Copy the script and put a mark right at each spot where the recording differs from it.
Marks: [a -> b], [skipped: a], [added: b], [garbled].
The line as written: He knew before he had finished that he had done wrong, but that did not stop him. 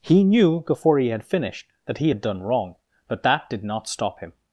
He knew before he had finished that he had done wrong, but that did not stop him.